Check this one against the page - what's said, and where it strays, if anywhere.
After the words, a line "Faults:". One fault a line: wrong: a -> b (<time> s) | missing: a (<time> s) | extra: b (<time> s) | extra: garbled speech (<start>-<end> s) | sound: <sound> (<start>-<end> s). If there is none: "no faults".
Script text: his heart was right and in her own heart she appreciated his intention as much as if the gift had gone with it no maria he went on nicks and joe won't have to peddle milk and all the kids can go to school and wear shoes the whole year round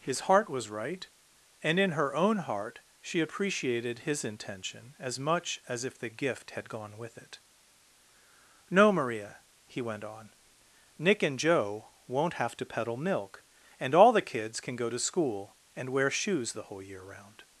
his heart was right and in her own heart she appreciated his intention as much as if the gift had gone with it no maria he went on nick and joe won't have to peddle milk and all the kids can go to school and wear shoes the whole year round
Faults:
wrong: nicks -> nick (11.0 s)